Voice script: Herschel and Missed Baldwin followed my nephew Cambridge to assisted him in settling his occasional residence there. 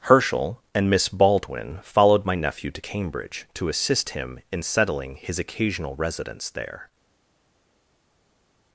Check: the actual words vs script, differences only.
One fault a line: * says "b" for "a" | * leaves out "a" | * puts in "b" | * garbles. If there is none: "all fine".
* says "Miss" for "Missed"
* puts in "to"
* says "assist" for "assisted"